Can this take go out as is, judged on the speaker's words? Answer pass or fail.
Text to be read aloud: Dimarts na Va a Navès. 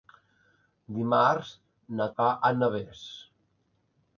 pass